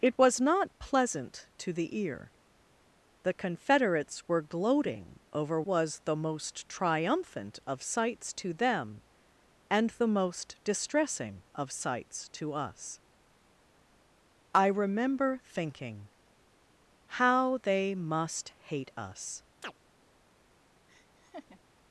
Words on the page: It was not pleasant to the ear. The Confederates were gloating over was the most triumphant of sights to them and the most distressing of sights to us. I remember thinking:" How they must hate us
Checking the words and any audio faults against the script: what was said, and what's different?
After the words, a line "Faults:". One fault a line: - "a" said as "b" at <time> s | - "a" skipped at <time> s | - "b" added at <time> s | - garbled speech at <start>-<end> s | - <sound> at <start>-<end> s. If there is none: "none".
It was not pleasant to the ear. The Confederates were gloating over was the most triumphant of sights to them and the most distressing of sights to us. I remember thinking:" How they must hate us
Faults:
- chirp at 19.6-19.7 s
- laugh at 20.9-21.6 s